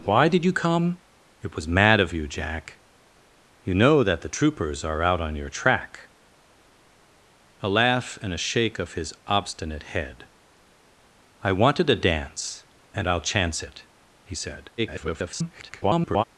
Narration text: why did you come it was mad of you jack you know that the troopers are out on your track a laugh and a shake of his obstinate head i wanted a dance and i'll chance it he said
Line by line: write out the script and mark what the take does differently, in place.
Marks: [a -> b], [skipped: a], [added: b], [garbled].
why did you come it was mad of you jack you know that the troopers are out on your track a laugh and a shake of his obstinate head i wanted a dance and i'll chance it he said [garbled]